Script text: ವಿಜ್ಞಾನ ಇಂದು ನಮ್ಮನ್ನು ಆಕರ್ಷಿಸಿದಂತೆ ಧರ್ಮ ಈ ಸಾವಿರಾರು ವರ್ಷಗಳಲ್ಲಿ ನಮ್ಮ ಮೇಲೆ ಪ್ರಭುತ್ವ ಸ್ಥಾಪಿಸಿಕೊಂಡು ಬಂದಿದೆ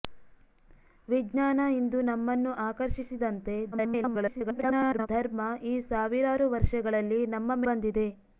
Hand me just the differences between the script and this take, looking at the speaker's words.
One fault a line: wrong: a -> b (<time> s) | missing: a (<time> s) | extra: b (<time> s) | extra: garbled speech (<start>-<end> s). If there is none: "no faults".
extra: garbled speech (3.7-5.1 s)
missing: ಮೇಲೆ ಪ್ರಭುತ್ವ ಸ್ಥಾಪಿಸಿಕೊಂಡು (7.6 s)